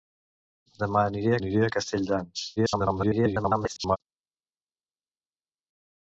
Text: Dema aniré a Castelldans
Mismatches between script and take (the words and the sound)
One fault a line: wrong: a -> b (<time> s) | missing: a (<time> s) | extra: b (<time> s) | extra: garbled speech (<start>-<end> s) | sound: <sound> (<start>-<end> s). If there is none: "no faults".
extra: aniré (1.4 s)
extra: garbled speech (2.6-4.0 s)